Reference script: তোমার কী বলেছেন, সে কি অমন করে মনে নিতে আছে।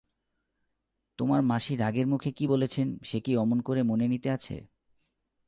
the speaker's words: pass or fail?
fail